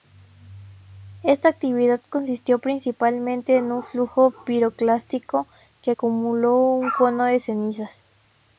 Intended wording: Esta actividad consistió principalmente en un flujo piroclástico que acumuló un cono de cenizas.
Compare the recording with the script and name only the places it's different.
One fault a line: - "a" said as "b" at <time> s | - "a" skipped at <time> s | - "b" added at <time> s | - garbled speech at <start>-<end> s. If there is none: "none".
none